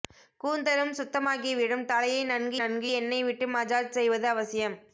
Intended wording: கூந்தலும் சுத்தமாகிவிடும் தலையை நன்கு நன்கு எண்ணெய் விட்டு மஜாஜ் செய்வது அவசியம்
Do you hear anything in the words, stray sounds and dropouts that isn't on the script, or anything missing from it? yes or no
no